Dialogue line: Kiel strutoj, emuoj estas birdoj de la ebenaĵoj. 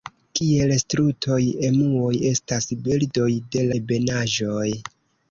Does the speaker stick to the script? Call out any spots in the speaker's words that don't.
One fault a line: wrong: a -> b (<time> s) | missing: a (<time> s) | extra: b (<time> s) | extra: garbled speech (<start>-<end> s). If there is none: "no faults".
missing: la (3.7 s)